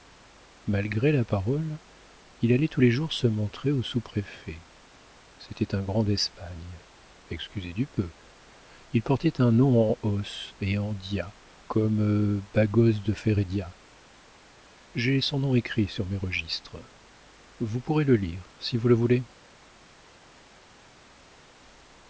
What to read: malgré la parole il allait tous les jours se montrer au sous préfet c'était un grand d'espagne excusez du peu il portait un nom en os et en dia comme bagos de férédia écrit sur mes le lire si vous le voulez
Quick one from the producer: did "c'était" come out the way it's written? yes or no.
yes